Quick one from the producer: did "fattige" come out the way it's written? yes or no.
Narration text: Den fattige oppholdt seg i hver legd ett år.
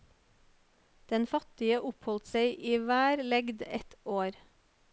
yes